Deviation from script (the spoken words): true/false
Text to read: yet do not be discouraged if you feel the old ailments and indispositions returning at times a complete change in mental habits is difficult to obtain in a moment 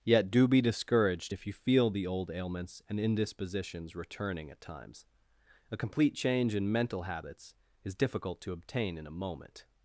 true